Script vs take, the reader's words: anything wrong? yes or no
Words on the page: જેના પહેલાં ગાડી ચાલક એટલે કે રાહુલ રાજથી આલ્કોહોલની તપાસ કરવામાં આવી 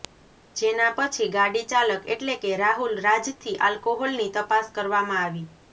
yes